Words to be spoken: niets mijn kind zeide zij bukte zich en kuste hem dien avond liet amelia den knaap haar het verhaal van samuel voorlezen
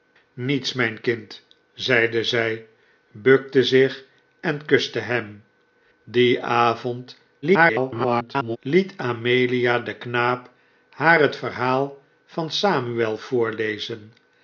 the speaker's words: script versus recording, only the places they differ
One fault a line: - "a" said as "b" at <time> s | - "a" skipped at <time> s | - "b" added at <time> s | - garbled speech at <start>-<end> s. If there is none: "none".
- garbled speech at 7.4-8.6 s